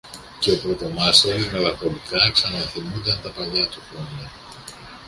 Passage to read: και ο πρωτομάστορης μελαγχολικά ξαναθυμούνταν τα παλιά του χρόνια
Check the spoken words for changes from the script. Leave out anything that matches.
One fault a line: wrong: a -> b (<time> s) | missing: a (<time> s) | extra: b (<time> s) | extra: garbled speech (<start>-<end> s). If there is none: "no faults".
no faults